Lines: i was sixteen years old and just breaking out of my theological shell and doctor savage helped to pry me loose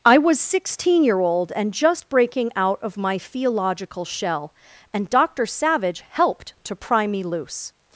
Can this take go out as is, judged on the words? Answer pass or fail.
fail